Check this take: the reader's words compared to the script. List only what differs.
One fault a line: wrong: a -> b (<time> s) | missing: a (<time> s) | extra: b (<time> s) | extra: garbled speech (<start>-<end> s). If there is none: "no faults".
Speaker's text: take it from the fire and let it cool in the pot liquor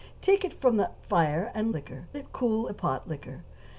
wrong: let -> liquor (1.7 s)
missing: in (2.7 s)